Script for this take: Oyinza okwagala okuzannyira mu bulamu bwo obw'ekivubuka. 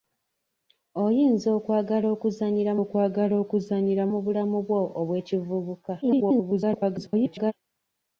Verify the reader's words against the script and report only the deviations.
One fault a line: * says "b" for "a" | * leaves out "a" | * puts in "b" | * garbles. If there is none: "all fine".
* puts in "okwagala okuzannyira"
* garbles